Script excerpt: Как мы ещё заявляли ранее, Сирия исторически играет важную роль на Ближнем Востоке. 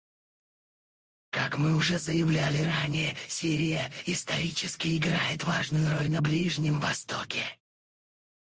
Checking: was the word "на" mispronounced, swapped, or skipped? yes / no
no